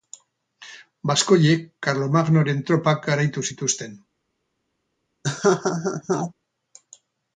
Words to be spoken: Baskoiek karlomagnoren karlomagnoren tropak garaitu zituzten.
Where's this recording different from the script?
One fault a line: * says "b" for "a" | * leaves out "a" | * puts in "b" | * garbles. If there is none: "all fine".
* leaves out "karlomagnoren"